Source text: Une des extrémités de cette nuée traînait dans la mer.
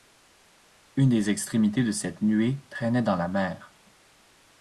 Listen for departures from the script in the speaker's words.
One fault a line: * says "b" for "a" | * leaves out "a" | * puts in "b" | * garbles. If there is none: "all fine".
all fine